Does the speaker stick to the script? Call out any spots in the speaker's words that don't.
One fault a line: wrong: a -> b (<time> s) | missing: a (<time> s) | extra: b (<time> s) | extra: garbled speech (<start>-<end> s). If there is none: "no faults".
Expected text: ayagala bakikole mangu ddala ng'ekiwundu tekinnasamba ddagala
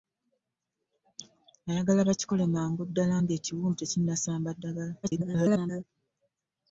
extra: garbled speech (5.0-5.8 s)